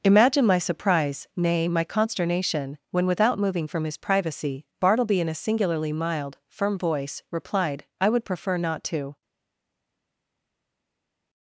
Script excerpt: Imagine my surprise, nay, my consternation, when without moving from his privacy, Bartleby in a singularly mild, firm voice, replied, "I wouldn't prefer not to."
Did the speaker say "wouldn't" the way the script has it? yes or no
no